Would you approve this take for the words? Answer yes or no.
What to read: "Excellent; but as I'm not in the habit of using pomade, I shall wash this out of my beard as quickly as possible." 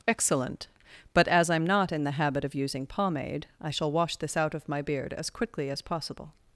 yes